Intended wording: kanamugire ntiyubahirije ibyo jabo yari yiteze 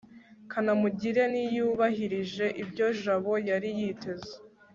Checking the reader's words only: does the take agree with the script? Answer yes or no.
yes